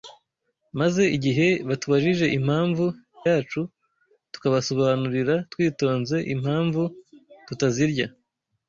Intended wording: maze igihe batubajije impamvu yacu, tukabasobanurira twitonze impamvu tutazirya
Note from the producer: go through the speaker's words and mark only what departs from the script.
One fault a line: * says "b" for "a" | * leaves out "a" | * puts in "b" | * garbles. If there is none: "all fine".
all fine